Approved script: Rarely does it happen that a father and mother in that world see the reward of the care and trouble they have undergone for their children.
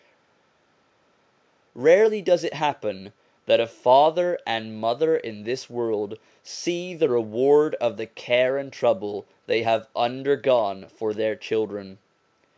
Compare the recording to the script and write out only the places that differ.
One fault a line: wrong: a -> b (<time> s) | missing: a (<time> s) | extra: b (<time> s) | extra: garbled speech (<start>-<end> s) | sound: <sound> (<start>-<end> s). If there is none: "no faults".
wrong: that -> this (5.4 s)